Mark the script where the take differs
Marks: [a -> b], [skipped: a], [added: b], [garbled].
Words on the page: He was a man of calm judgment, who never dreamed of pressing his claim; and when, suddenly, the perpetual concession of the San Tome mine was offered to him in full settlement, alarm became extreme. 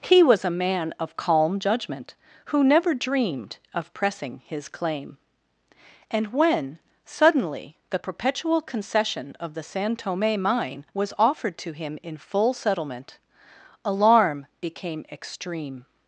He was a man of calm judgment, who never dreamed of pressing his claim; and when, suddenly, the perpetual concession of the San Tome mine was offered to him in full settlement, alarm became extreme.